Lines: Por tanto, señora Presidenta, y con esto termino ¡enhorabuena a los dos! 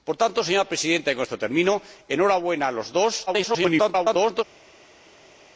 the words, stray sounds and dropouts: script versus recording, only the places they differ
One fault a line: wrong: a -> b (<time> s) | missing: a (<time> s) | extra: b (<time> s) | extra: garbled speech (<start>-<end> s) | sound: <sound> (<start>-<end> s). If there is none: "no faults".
extra: garbled speech (3.3-4.4 s)